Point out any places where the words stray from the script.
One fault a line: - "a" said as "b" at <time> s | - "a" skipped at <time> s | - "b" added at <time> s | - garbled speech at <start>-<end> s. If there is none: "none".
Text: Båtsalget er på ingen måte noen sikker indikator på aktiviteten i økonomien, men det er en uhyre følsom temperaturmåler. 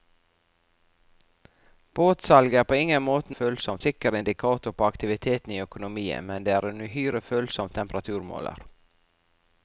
- "noen" said as "følsom" at 3.4 s